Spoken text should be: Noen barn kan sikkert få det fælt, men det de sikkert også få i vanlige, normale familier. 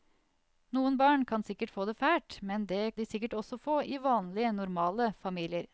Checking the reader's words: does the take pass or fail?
pass